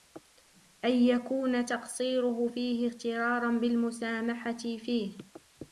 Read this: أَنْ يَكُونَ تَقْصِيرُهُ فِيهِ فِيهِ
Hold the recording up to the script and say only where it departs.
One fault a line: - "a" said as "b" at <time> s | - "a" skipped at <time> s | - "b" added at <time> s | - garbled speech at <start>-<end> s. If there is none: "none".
- "اغْتِرَارًا بِالْمُسَامَحَةِ" added at 2.9 s